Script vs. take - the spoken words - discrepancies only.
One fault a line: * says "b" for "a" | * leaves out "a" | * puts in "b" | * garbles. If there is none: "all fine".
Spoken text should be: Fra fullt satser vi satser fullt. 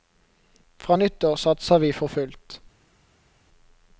* says "nyttår" for "fullt"
* says "for" for "satser"